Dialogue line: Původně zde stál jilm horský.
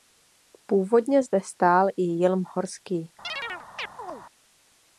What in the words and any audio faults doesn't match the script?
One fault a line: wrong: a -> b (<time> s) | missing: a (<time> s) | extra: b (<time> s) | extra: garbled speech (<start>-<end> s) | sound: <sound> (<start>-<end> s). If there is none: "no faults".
extra: i (1.9 s)
sound: chirp (3.2-4.2 s)